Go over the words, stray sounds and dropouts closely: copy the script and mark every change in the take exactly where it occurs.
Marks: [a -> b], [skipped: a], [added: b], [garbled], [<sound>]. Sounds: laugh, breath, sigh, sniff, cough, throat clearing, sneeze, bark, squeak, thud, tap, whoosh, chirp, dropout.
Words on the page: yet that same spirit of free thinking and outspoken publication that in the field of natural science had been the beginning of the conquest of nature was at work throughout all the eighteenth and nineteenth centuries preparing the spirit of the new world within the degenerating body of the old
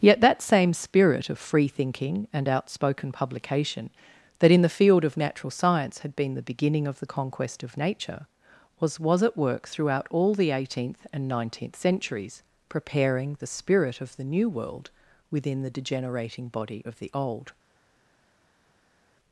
yet that same spirit of free thinking and outspoken publication that in the field of natural science had been the beginning of the conquest of nature was [added: was] at work throughout all the eighteenth and nineteenth centuries preparing the spirit of the new world within the degenerating body of the old